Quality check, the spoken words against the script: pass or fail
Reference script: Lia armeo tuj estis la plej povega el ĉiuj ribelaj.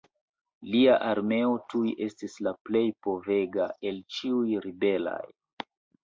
pass